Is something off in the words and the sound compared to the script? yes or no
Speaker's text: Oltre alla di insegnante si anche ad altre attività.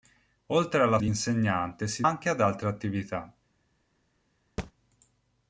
yes